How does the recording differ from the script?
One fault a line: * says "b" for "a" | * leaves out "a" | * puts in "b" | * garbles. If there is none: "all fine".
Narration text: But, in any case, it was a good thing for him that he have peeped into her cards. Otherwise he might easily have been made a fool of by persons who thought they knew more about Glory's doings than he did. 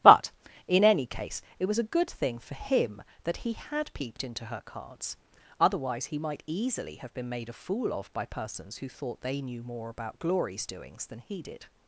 * says "had" for "have"